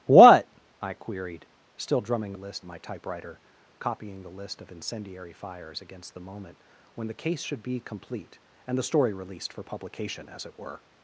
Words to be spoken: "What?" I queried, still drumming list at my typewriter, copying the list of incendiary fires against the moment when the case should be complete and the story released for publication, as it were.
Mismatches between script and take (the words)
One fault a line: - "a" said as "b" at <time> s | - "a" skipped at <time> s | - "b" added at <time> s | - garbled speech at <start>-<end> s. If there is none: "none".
none